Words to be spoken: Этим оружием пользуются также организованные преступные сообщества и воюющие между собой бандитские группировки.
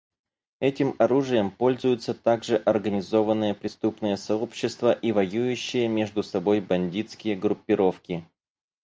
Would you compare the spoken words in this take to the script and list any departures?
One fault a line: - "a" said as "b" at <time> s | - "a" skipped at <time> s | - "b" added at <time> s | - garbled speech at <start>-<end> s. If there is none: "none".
none